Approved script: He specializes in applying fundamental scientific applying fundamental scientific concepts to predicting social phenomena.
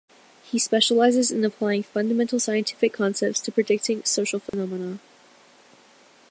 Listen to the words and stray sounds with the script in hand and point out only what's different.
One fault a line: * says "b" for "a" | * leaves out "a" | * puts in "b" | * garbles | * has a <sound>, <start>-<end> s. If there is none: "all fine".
* leaves out "applying fundamental scientific"
* has a dropout, 4.5-4.5 s